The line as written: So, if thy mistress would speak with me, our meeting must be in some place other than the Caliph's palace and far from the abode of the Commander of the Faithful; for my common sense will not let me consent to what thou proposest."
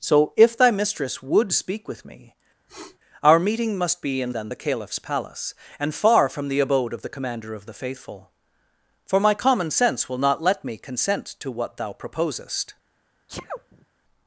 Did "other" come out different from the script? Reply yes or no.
yes